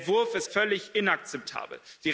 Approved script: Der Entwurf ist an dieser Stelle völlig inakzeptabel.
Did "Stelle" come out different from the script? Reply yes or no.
yes